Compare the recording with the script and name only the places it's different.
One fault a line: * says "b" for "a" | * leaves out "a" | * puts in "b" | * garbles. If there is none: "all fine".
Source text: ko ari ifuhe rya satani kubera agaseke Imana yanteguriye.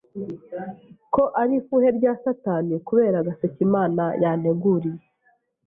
all fine